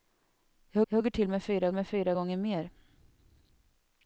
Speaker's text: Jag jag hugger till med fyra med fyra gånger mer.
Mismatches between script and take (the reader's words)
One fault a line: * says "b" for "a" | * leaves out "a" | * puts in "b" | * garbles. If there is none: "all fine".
all fine